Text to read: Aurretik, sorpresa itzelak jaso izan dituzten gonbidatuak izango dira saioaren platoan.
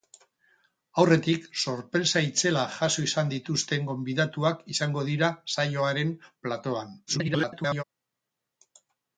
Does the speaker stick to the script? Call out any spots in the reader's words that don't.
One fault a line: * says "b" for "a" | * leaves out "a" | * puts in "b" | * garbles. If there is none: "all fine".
* garbles